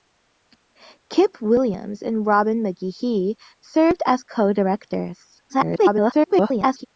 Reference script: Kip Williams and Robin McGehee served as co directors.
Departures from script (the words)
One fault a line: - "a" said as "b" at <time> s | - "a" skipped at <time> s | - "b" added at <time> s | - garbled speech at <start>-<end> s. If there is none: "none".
- garbled speech at 5.5-6.9 s